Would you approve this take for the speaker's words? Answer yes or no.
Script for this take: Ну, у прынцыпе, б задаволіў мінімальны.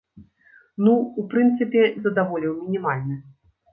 yes